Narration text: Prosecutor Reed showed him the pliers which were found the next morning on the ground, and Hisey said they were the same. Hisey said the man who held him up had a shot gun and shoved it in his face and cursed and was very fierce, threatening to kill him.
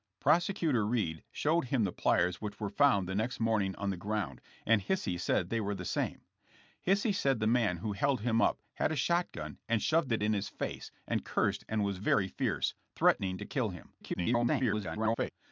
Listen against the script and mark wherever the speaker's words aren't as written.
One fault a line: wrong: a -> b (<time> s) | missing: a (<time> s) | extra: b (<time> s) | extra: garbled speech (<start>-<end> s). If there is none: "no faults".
extra: garbled speech (14.0-15.3 s)